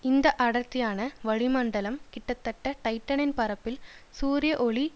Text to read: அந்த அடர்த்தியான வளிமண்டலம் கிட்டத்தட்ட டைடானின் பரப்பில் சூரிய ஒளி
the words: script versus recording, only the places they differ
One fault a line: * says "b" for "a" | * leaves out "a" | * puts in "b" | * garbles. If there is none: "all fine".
* says "இந்த" for "அந்த"